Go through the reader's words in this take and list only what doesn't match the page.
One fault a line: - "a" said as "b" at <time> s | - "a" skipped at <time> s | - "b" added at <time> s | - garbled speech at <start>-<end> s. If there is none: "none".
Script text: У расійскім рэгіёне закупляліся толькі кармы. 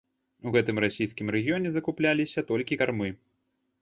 - "гэтым" added at 0.5 s